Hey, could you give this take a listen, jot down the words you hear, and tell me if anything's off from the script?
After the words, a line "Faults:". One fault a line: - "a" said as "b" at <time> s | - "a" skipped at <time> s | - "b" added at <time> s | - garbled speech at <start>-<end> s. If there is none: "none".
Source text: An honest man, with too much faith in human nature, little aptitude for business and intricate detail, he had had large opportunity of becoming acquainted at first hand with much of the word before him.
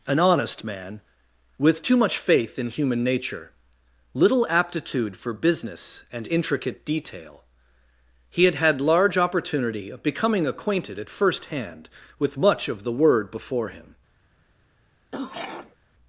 An honest man, with too much faith in human nature, little aptitude for business and intricate detail, he had had large opportunity of becoming acquainted at first hand with much of the word before him.
Faults:
none